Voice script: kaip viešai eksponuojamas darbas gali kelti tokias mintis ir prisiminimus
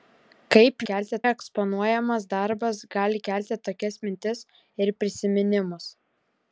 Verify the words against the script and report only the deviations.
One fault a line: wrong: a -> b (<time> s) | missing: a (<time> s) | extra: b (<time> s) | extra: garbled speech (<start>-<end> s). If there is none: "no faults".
wrong: viešai -> kelti (0.9 s)